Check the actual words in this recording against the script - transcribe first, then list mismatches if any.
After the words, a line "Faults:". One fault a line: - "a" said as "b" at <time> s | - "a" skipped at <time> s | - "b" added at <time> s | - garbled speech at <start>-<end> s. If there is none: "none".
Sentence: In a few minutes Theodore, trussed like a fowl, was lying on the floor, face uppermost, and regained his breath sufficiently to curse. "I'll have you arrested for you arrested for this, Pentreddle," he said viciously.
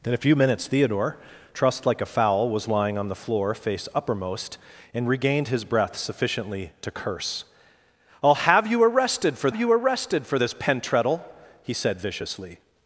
In a few minutes Theodore, trussed like a fowl, was lying on the floor, face uppermost, and regained his breath sufficiently to curse. "I'll have you arrested for you arrested for this, Pentreddle," he said viciously.
Faults:
none